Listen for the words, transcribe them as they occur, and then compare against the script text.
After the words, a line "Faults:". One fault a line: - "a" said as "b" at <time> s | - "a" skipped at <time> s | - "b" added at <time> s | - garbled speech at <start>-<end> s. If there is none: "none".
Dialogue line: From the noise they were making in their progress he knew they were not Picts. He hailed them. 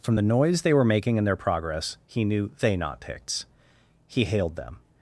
From the noise they were making in their progress he knew they not Picts. He hailed them.
Faults:
- "were" skipped at 2.8 s